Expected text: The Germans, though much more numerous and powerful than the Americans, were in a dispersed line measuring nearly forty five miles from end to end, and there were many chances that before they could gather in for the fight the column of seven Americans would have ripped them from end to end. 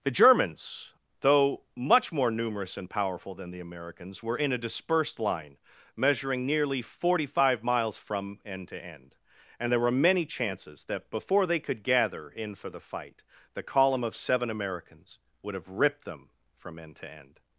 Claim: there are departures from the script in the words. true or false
false